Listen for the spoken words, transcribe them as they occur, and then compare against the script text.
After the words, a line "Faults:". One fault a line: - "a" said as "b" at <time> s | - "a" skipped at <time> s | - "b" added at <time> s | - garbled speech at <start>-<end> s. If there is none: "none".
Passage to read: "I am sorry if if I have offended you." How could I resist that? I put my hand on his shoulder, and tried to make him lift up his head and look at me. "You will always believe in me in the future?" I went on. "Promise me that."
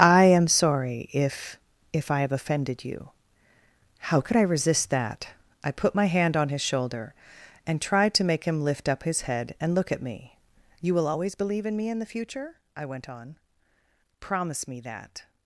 "I am sorry if if I have offended you." How could I resist that? I put my hand on his shoulder, and tried to make him lift up his head and look at me. "You will always believe in me in the future?" I went on. "Promise me that."
Faults:
none